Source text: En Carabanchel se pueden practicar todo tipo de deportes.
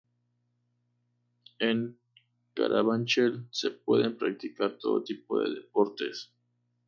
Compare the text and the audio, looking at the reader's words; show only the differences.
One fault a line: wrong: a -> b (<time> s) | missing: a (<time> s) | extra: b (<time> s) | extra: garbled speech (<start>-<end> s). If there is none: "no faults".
no faults